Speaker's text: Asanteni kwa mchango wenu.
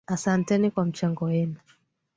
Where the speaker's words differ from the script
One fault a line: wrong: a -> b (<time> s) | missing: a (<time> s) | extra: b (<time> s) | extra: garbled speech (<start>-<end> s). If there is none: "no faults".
no faults